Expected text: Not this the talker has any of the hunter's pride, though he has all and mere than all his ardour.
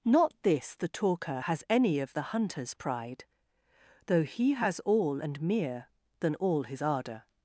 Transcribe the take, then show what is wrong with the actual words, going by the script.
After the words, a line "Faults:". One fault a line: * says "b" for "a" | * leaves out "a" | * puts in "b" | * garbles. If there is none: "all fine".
Not this the talker has any of the hunter's pride, though he has all and mere than all his ardour.
Faults:
all fine